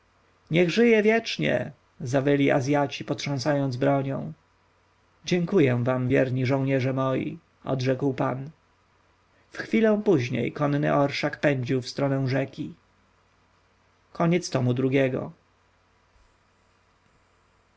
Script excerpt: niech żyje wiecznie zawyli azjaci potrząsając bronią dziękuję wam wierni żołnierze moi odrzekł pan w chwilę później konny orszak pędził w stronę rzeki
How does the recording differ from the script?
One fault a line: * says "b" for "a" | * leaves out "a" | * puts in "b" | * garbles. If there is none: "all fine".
all fine